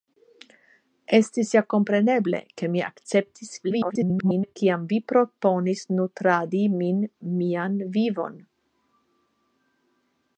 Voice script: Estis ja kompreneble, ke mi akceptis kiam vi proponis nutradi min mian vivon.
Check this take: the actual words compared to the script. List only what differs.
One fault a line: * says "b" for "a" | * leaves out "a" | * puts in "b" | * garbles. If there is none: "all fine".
* garbles